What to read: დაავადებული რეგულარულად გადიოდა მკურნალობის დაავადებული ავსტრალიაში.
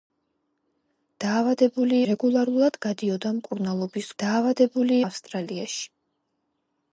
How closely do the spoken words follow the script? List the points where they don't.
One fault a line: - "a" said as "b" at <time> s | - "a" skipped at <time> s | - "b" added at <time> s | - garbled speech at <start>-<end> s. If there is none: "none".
none